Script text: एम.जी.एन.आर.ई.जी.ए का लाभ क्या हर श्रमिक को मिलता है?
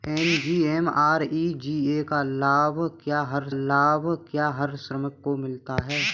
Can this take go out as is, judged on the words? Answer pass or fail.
fail